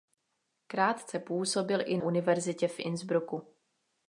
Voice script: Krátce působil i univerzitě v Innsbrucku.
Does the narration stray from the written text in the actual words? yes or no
no